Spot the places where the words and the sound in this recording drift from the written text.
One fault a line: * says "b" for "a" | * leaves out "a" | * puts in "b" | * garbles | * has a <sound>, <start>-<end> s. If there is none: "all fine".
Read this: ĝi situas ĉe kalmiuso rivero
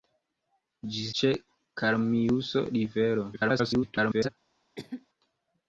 * leaves out "situas"
* garbles
* has a cough, 4.8-5.1 s